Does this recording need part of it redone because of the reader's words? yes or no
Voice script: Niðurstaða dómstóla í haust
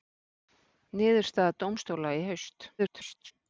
yes